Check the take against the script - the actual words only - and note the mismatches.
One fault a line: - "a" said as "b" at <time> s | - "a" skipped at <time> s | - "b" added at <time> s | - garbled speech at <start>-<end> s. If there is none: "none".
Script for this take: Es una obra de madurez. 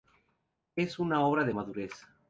none